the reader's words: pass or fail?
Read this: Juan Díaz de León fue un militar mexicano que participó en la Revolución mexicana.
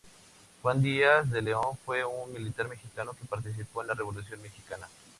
pass